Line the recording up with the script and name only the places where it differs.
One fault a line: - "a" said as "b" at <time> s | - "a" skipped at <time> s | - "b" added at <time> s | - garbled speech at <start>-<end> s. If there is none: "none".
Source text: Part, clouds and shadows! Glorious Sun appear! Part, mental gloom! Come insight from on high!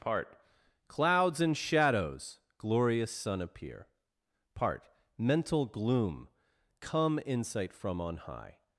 none